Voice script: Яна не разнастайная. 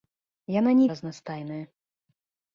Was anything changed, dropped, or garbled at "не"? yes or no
no